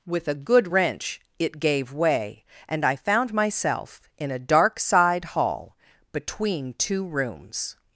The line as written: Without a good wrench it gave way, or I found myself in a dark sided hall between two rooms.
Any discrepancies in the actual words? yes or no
yes